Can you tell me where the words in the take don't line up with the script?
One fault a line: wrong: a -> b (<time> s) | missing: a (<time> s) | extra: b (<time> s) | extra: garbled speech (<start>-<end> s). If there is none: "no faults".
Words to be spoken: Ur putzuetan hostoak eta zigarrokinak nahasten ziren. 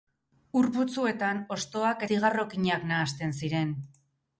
missing: eta (2.1 s)